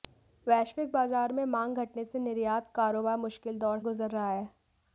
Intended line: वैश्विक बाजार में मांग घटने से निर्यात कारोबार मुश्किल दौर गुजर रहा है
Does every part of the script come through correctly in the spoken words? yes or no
yes